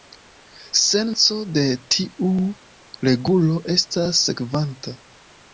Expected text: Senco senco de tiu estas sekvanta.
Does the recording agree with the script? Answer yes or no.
no